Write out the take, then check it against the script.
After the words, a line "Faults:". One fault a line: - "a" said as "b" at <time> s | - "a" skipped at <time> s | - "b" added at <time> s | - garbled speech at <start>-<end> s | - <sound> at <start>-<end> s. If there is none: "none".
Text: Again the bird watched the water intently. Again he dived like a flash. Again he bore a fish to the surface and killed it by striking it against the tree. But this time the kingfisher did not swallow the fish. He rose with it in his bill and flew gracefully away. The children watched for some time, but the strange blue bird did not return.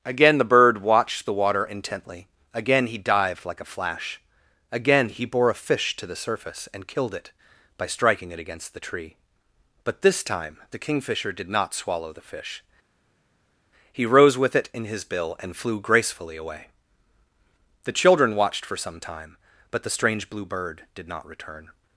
Again the bird watched the water intently. Again he dived like a flash. Again he bore a fish to the surface and killed it by striking it against the tree. But this time the kingfisher did not swallow the fish. He rose with it in his bill and flew gracefully away. The children watched for some time, but the strange blue bird did not return.
Faults:
none